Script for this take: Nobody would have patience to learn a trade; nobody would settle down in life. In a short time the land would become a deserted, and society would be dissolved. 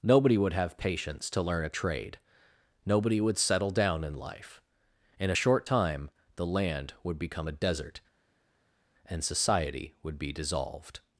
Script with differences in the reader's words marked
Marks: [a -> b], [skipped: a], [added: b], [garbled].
Nobody would have patience to learn a trade; nobody would settle down in life. In a short time the land would become a [deserted, -> desert] and society would be dissolved.